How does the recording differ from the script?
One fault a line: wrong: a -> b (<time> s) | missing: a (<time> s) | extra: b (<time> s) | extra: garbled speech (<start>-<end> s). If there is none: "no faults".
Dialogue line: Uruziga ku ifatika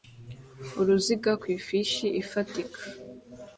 extra: ifishi (1.6 s)